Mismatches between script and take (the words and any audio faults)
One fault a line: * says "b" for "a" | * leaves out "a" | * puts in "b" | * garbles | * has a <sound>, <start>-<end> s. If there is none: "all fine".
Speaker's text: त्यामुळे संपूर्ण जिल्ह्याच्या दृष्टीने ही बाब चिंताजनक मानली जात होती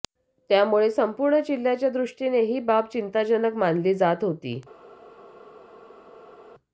all fine